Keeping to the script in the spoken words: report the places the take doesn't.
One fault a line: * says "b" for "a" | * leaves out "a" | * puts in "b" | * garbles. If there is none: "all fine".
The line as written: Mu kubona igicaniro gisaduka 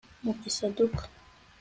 * leaves out "kubona igicaniro"